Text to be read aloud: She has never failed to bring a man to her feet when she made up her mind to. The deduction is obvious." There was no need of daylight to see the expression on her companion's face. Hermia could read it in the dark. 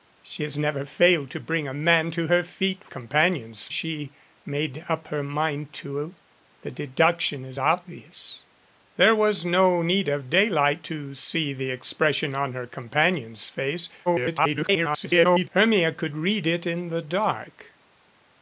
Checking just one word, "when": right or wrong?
wrong